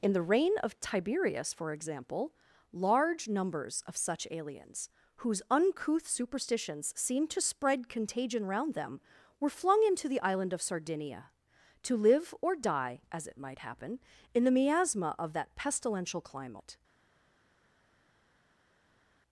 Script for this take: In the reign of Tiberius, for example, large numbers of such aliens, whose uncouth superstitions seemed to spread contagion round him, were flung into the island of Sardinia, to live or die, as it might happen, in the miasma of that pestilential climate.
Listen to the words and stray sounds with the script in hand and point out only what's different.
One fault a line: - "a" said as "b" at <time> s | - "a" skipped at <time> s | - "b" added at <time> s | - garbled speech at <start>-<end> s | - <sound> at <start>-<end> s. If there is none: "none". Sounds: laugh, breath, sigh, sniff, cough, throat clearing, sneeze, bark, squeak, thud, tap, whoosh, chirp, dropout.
- "him" said as "them" at 8.7 s